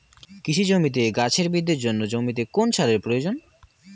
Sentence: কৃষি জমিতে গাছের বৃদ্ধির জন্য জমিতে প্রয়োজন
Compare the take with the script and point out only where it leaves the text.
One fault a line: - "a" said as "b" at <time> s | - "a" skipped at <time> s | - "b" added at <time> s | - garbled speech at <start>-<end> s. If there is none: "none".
- "কোন সারের" added at 2.5 s